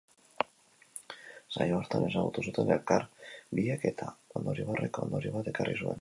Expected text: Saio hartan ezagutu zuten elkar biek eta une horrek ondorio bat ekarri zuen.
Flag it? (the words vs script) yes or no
yes